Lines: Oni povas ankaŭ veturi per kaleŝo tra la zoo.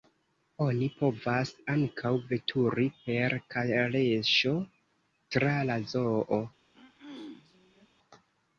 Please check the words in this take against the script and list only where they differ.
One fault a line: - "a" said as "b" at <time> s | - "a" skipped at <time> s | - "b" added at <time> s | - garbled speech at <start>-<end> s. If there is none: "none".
none